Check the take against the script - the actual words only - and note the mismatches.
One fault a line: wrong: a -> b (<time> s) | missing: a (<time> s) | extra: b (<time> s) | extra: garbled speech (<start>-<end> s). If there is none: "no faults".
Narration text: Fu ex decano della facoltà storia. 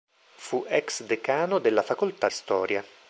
no faults